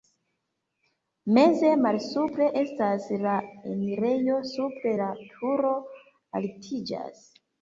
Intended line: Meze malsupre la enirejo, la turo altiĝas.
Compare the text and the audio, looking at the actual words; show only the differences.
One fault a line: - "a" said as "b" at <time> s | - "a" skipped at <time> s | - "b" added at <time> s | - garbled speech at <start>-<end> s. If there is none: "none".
- "estas" added at 2.6 s
- "supre" added at 4.5 s